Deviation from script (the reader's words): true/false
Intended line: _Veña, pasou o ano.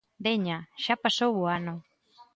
true